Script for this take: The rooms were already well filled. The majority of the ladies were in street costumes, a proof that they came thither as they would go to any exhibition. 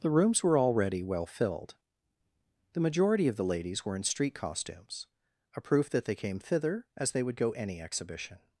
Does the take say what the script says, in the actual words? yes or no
no